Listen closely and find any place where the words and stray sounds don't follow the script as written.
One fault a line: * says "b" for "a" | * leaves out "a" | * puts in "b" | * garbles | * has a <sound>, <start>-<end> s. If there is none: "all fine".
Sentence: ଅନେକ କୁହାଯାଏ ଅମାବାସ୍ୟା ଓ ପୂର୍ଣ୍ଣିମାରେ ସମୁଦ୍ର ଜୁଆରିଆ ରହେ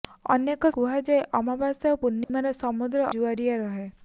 * has a dropout, 2.2-2.3 s